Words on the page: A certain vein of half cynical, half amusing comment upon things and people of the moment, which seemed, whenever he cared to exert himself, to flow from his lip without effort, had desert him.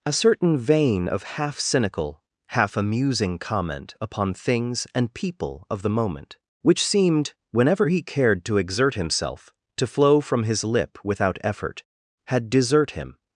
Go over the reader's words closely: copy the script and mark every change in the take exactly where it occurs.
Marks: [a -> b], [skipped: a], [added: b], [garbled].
A certain vein of half cynical, half amusing comment upon things and people of the moment, which seemed, whenever he cared to exert himself, to flow from his lip without effort, had desert him.